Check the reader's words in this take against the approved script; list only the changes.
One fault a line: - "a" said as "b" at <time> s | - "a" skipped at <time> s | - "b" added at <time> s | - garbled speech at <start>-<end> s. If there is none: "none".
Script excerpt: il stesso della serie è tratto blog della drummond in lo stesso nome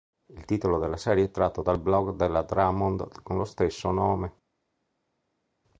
- "stesso" said as "titolo" at 0.5 s
- "dal" added at 1.6 s
- "in" said as "con" at 3.2 s